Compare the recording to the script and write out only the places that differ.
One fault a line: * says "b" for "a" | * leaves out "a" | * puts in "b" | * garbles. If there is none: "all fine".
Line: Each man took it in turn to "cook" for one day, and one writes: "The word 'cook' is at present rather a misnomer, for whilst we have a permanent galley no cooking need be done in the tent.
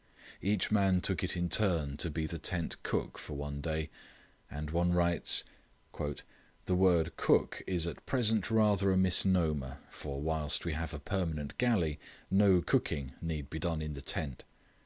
* puts in "be the tent"